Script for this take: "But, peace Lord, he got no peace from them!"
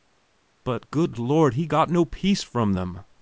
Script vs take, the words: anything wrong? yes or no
yes